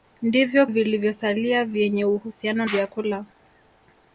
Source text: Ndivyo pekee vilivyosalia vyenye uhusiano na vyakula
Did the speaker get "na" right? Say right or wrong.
wrong